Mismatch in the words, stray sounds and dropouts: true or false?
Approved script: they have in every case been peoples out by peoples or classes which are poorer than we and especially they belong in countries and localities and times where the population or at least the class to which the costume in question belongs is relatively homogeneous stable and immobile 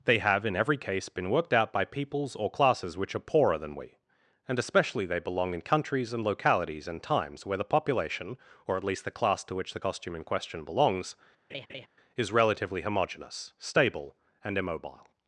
true